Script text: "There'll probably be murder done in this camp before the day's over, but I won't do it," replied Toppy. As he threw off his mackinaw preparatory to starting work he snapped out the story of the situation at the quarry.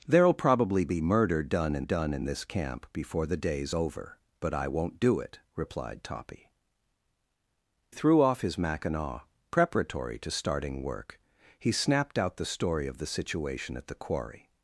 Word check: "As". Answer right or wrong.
wrong